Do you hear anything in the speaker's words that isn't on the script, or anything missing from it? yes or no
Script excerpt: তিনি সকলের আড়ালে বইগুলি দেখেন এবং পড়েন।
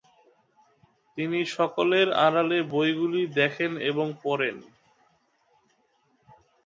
no